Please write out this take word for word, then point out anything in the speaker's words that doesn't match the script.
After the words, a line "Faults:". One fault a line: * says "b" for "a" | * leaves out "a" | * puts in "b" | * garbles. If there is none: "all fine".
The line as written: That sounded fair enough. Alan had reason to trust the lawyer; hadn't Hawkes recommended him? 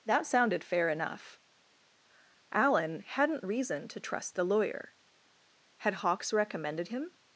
That sounded fair enough. Alan hadn't reason to trust the lawyer; had Hawkes recommended him?
Faults:
* says "hadn't" for "had"
* says "had" for "hadn't"